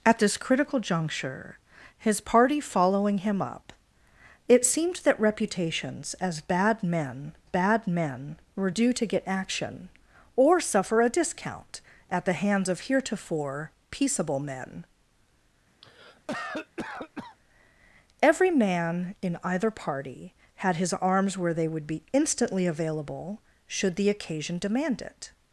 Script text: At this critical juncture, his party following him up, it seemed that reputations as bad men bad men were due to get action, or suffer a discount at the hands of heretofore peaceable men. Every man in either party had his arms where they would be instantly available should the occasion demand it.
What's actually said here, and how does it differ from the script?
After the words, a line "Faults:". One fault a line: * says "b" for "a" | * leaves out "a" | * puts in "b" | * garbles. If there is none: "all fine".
At this critical juncture, his party following him up, it seemed that reputations as bad men bad men were due to get action, or suffer a discount at the hands of heretofore peaceable men. Every man in either party had his arms where they would be instantly available should the occasion demand it.
Faults:
all fine